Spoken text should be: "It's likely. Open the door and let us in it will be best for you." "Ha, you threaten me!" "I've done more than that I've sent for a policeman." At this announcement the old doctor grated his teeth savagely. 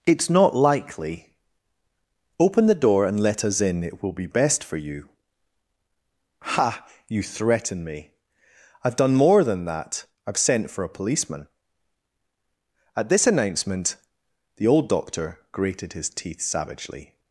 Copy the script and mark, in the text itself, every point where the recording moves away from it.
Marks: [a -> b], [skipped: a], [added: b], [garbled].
"It's [added: not] likely. Open the door and let us in it will be best for you." "Ha, you threaten me!" "I've done more than that I've sent for a policeman." At this announcement the old doctor grated his teeth savagely.